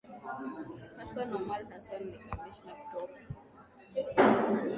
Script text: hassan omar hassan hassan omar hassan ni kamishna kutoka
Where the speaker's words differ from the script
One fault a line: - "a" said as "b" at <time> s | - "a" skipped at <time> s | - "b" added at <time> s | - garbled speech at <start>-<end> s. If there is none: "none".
- "hassan omar hassan" skipped at 2.0 s